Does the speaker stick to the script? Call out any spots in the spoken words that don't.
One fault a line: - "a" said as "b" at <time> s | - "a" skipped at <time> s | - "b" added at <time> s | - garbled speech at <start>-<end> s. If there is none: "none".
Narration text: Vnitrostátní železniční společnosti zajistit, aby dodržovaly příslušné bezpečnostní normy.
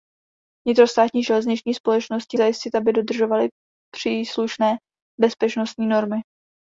none